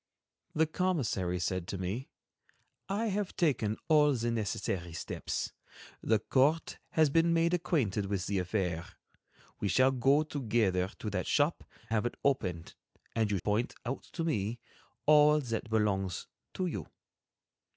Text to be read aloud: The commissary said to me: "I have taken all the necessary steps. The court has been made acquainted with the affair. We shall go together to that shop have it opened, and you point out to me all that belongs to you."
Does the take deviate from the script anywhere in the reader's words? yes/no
no